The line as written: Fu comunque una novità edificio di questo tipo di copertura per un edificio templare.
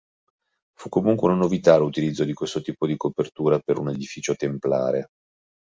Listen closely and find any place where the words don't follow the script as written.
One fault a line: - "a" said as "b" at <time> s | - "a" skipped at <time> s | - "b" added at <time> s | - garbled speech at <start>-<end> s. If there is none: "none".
- "edificio" said as "l'utilizzo" at 1.8 s